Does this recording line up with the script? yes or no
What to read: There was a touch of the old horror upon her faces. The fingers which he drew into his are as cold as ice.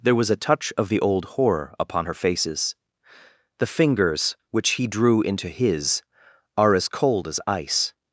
yes